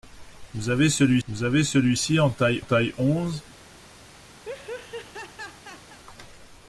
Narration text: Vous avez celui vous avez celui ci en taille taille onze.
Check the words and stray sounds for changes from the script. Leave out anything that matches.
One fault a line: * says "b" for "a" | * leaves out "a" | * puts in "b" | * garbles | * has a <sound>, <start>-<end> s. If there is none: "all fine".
* has a laugh, 4.4-6.0 s